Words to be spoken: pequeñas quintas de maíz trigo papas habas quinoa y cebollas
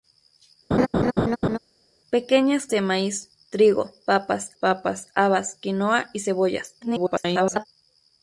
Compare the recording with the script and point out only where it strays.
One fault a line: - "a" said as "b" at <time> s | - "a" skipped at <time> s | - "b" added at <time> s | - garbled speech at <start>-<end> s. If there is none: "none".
- "quintas" skipped at 2.7 s
- "papas" added at 4.6 s
- garbled speech at 6.8-7.7 s